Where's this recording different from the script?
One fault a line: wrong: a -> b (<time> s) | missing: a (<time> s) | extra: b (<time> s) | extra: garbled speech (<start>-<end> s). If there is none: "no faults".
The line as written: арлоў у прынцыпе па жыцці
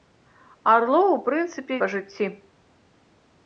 no faults